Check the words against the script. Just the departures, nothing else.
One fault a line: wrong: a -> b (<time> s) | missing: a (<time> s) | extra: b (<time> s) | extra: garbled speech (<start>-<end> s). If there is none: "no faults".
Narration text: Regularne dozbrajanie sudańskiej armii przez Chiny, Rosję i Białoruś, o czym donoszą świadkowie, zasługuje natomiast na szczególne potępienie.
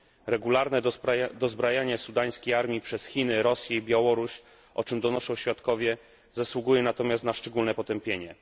no faults